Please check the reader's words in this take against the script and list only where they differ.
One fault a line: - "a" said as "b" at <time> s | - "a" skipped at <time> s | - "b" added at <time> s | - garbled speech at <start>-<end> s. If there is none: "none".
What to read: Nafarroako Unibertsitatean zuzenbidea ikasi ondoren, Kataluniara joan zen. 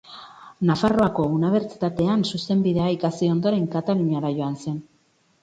none